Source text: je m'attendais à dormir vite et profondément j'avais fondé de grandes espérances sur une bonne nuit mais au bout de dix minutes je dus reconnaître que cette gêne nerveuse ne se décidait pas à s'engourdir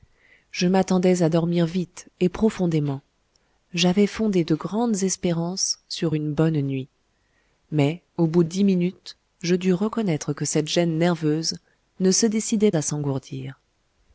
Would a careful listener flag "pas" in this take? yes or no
yes